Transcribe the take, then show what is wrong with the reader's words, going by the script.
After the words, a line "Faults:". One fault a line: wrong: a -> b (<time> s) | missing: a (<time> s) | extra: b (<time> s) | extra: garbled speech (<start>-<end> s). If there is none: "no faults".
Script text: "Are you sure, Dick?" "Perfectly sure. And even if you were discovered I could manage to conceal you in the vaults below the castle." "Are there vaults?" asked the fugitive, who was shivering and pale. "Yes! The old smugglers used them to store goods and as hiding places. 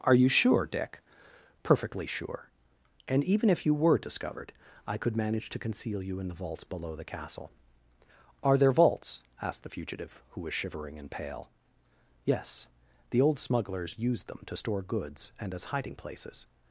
"Are you sure, Dick?" "Perfectly sure. And even if you were discovered I could manage to conceal you in the vaults below the castle." "Are there vaults?" asked the fugitive, who was shivering and pale. "Yes! The old smugglers used them to store goods and as hiding places.
Faults:
no faults